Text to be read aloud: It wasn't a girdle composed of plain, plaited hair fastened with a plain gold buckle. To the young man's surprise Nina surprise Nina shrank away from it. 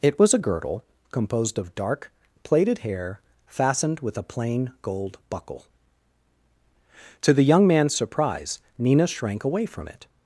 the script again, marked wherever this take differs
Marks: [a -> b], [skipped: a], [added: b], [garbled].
It [wasn't -> was] a girdle composed of [plain, -> dark] plaited hair fastened with a plain gold buckle. To the young man's surprise Nina [skipped: surprise Nina] shrank away from it.